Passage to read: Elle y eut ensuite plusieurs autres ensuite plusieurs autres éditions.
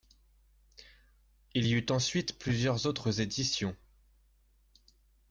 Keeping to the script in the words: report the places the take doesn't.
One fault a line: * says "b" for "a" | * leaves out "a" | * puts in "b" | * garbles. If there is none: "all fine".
* says "Il" for "Elle"
* leaves out "ensuite plusieurs autres"